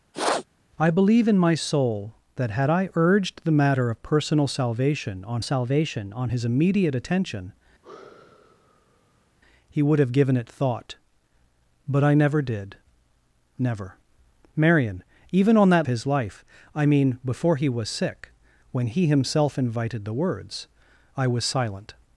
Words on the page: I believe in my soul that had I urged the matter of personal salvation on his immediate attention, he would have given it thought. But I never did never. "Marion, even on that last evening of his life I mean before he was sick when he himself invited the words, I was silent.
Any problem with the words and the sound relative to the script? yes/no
yes